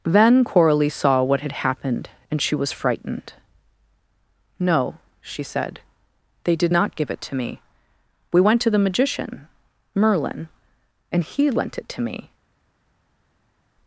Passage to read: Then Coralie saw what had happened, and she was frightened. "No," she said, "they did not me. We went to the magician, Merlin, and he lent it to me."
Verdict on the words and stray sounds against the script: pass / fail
fail